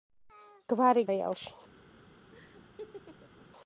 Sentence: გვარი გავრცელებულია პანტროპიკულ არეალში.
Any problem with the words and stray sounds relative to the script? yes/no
yes